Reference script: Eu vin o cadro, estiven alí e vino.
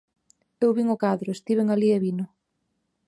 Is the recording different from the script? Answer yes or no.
no